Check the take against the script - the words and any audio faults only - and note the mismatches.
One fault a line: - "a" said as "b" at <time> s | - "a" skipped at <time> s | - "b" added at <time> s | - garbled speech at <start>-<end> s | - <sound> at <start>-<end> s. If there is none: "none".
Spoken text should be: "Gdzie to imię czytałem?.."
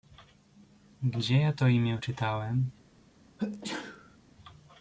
- "ja" added at 1.4 s
- sneeze at 3.4-4.2 s